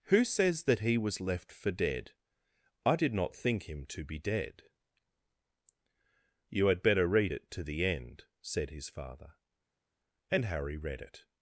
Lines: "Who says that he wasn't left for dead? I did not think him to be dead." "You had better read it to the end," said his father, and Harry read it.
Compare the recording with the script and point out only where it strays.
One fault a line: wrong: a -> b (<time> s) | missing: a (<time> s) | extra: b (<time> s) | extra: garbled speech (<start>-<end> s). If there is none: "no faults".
wrong: wasn't -> was (1.0 s)